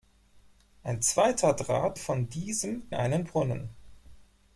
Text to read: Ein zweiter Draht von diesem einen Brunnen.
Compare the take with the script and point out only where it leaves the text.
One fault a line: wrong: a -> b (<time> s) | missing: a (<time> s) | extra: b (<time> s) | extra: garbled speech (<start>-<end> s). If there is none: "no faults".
no faults